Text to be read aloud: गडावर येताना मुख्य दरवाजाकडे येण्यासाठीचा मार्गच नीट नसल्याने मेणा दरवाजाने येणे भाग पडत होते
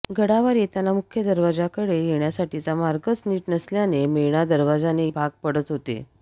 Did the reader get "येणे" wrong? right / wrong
wrong